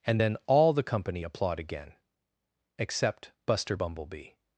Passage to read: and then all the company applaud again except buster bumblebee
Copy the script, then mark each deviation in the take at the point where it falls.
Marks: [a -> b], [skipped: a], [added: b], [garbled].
and then all the company applaud again except buster bumblebee